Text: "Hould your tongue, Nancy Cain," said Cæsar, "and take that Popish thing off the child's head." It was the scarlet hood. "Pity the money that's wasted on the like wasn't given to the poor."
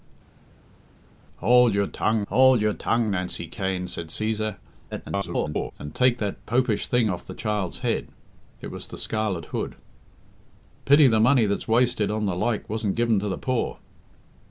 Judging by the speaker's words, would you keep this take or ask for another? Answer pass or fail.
fail